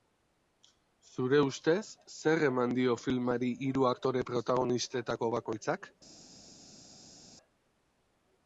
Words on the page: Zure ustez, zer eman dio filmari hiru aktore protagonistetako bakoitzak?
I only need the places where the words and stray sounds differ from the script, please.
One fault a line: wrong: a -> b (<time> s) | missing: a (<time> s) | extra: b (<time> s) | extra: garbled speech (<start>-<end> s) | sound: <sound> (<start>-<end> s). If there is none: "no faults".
no faults